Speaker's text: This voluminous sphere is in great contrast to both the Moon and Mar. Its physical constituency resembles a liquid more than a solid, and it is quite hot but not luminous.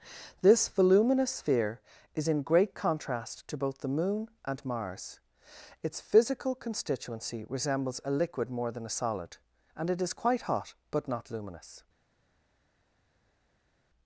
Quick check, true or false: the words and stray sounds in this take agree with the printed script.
false